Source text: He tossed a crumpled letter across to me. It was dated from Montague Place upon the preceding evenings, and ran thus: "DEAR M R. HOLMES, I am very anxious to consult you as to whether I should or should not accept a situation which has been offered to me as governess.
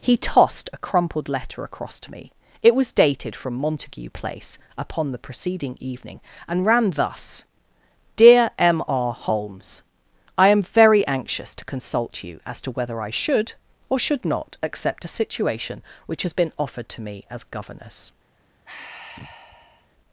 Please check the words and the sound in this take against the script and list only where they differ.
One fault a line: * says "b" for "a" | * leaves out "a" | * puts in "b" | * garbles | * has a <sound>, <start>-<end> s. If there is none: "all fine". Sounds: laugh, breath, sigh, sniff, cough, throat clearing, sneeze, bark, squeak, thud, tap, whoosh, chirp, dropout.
* says "evening" for "evenings"
* has a sigh, 18.6-19.9 s